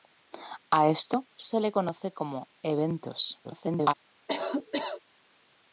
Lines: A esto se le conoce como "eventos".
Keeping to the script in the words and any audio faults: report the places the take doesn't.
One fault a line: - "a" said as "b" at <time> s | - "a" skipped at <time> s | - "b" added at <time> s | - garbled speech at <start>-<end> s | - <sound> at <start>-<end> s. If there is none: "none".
- garbled speech at 3.4-3.9 s
- cough at 4.3-5.0 s